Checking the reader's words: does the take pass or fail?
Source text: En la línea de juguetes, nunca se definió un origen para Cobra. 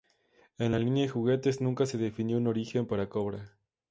pass